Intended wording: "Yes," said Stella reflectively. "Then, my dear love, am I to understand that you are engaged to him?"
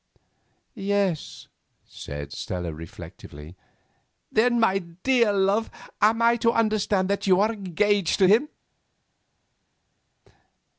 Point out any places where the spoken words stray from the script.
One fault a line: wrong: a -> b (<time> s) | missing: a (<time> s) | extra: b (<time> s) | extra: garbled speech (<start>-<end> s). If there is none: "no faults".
no faults